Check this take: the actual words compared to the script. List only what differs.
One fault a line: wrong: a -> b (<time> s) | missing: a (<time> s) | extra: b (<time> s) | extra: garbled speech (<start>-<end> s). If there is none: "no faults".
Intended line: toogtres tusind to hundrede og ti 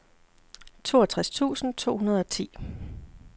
no faults